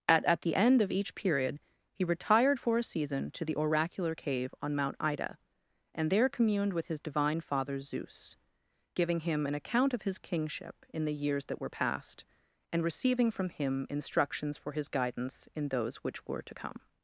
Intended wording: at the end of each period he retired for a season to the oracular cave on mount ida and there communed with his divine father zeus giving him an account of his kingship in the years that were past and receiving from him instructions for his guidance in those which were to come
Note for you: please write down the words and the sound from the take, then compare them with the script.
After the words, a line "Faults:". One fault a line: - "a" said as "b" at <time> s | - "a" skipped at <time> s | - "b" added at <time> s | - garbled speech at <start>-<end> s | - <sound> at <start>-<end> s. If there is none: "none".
at at the end of each period he retired for a season to the oracular cave on mount ida and there communed with his divine father zeus giving him an account of his kingship in the years that were past and receiving from him instructions for his guidance in those which were to come
Faults:
- "at" added at 0.2 s